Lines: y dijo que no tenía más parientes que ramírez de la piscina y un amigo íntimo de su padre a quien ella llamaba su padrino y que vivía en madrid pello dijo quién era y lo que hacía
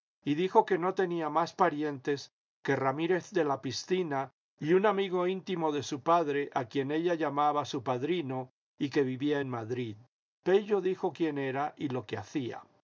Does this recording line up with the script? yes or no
yes